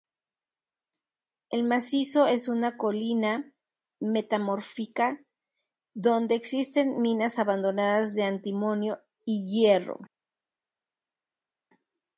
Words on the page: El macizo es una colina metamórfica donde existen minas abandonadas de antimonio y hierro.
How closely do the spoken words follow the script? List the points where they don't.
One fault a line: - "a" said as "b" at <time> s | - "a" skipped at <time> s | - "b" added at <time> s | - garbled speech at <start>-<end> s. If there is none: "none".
none